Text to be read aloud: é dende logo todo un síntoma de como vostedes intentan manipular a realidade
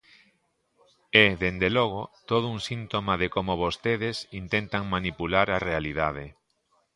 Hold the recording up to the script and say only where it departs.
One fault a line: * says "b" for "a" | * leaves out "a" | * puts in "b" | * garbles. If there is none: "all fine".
all fine